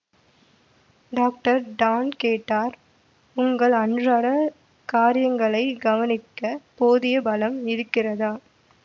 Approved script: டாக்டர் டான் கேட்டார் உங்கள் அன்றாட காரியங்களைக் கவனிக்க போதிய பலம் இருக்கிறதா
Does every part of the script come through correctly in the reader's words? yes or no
yes